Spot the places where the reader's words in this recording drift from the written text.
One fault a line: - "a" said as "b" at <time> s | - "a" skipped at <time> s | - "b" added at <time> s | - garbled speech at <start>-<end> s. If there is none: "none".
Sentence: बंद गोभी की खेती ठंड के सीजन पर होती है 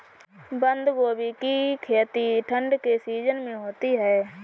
- "पर" said as "में" at 3.4 s